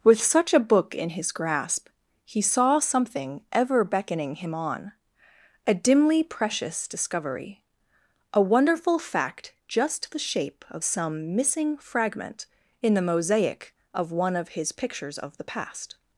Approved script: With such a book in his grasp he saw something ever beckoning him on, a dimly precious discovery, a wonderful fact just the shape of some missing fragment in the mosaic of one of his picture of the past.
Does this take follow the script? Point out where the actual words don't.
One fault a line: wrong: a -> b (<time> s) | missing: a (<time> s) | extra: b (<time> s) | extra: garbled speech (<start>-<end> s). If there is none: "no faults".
wrong: picture -> pictures (14.7 s)